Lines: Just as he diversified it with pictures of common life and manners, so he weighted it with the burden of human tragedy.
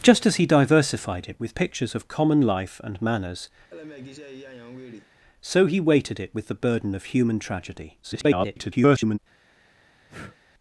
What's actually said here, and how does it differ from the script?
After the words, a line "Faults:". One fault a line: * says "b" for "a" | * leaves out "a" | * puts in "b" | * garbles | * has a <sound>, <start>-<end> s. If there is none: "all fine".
Just as he diversified it with pictures of common life and manners, so he weighted it with the burden of human tragedy. [garbled]
Faults:
* has a laugh, 3.7-5.1 s
* garbles
* has a breath, 10.1-10.4 s